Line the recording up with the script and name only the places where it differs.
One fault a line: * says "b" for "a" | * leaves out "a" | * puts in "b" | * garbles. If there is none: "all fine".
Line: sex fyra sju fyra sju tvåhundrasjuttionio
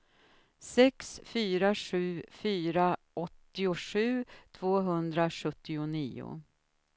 * says "åttiosju" for "sju"